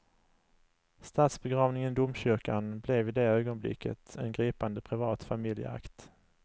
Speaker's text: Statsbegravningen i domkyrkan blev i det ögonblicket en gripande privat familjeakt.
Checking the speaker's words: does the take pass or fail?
pass